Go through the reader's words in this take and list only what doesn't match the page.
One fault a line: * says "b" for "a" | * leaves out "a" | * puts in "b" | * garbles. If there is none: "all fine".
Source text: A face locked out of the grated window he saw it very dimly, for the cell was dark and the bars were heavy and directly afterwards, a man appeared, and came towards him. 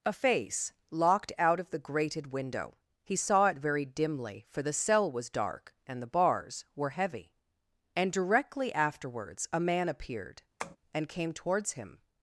all fine